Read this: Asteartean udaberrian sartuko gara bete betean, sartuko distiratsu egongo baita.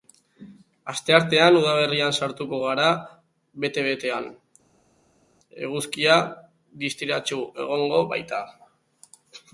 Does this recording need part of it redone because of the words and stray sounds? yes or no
yes